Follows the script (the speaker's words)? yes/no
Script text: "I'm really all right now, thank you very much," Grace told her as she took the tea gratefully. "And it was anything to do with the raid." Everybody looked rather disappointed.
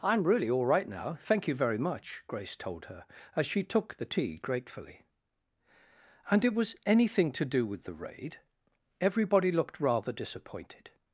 yes